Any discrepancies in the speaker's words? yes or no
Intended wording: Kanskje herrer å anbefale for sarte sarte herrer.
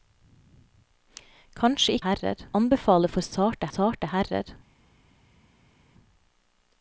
no